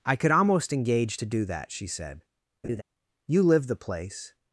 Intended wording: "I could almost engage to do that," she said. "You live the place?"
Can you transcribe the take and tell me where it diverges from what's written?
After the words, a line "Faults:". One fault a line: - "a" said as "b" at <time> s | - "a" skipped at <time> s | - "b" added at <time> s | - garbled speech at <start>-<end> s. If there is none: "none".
"I could almost engage to do that," she said. "You live the place?"
Faults:
none